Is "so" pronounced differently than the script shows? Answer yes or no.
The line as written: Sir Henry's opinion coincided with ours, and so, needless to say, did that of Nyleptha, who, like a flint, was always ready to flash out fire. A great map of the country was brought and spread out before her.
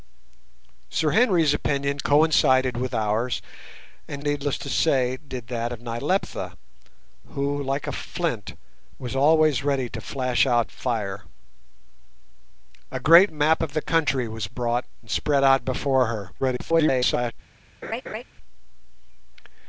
yes